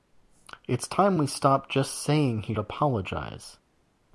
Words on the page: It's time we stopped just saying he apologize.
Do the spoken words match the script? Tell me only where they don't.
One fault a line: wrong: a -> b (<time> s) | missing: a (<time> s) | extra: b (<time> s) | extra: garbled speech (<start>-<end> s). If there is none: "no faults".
no faults